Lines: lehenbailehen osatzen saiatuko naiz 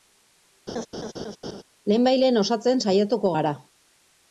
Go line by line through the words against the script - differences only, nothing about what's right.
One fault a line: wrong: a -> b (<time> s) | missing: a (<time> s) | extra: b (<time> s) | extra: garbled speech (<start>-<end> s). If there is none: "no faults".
wrong: naiz -> gara (3.4 s)